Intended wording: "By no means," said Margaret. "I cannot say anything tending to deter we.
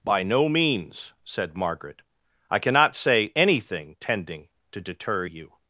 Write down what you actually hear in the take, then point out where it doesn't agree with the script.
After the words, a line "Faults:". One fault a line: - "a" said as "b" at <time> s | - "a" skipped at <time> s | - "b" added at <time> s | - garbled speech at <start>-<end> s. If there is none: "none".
"By no means," said Margaret. "I cannot say anything tending to deter you.
Faults:
- "we" said as "you" at 5.2 s